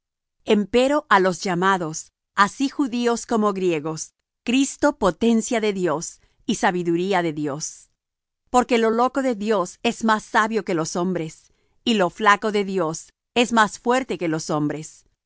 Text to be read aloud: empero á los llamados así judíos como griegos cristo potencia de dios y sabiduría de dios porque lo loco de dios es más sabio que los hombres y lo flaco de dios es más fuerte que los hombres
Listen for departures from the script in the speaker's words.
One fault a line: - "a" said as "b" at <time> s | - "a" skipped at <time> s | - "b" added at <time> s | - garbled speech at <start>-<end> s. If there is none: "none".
none